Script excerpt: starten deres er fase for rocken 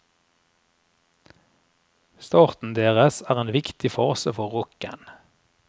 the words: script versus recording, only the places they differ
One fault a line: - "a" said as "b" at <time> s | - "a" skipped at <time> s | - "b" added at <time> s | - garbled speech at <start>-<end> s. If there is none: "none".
- "en viktig" added at 3.4 s